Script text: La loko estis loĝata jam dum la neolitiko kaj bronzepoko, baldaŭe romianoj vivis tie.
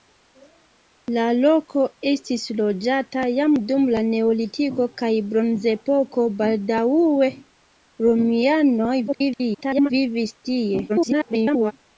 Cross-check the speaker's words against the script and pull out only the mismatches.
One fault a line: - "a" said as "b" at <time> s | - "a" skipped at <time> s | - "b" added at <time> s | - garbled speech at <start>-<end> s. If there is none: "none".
- garbled speech at 9.1-9.9 s
- garbled speech at 10.9-11.7 s